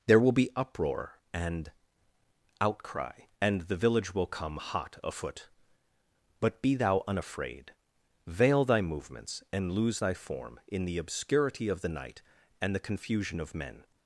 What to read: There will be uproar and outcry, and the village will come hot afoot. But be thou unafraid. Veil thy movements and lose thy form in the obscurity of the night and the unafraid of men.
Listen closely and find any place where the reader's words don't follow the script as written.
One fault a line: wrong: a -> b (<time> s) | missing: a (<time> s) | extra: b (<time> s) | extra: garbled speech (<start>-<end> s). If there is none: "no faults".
wrong: unafraid -> confusion (12.8 s)